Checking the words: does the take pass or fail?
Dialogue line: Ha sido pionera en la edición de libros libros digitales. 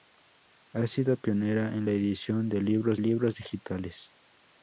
pass